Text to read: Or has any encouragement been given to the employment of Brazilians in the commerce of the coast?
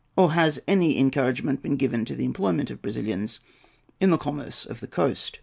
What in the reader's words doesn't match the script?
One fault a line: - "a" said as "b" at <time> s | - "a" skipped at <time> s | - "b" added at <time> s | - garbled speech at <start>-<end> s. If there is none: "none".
none